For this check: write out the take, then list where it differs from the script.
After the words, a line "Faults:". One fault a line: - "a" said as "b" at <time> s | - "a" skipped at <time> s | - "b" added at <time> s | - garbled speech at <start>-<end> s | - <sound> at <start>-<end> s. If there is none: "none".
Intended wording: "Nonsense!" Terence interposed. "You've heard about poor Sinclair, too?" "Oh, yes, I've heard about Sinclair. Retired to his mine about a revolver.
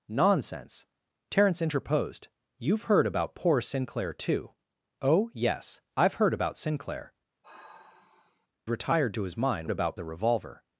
"Nonsense!" Terence interposed. "You've heard about poor Sinclair, too?" "Oh, yes, I've heard about Sinclair. Retired to his mine about a revolver.
Faults:
- sigh at 7.4-8.5 s